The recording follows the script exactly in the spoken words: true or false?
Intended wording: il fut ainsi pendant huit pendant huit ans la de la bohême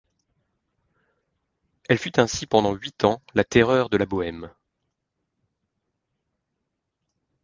false